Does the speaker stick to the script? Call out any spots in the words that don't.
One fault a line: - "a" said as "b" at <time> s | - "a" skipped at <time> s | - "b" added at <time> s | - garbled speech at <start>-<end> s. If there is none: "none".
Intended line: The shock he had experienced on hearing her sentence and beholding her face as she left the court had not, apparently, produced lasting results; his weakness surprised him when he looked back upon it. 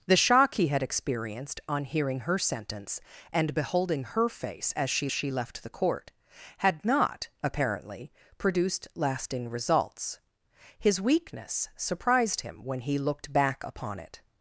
- "she" added at 5.1 s